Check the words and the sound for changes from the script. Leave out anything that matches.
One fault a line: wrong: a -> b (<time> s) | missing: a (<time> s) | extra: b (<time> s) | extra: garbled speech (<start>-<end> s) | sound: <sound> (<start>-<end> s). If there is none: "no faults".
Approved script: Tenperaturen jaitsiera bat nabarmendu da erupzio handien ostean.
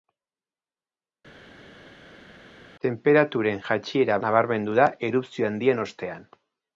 missing: bat (4.2 s)